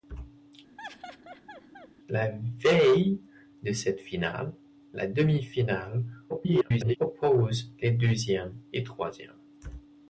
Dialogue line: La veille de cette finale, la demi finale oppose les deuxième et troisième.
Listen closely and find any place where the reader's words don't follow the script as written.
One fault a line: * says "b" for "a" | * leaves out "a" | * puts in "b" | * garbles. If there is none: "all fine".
* garbles